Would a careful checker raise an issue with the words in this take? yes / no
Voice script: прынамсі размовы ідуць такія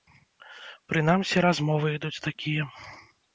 no